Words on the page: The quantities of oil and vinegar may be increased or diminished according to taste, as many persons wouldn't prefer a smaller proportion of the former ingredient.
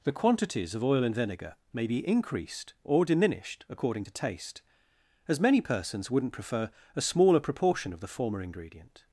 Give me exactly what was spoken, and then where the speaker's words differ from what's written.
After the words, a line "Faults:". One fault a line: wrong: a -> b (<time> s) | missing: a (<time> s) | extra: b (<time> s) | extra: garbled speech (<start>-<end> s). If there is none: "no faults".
The quantities of oil and vinegar may be increased or diminished according to taste, as many persons wouldn't prefer a smaller proportion of the former ingredient.
Faults:
no faults